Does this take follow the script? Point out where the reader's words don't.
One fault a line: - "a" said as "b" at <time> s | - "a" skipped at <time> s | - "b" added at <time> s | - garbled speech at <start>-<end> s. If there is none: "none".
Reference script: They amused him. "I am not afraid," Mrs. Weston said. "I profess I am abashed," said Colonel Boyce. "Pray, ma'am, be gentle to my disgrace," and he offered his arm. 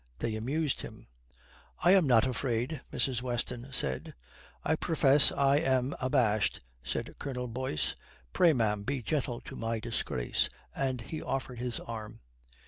none